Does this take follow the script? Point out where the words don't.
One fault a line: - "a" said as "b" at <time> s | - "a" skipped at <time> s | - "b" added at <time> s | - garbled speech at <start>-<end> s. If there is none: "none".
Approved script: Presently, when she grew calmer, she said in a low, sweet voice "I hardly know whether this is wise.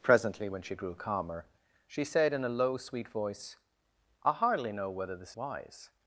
- "is" skipped at 5.3 s